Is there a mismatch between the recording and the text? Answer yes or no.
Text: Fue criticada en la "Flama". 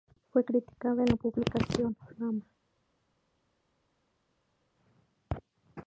yes